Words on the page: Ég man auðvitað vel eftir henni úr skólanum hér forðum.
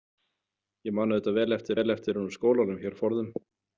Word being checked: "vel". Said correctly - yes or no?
yes